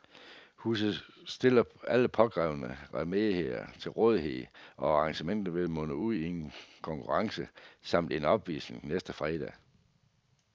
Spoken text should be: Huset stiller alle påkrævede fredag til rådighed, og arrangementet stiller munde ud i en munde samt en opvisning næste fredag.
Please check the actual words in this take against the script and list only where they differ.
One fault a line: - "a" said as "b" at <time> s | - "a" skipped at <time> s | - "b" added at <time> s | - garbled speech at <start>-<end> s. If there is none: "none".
- "fredag" said as "remedier" at 2.9 s
- "stiller" said as "vil" at 5.5 s
- "munde" said as "konkurrence" at 6.8 s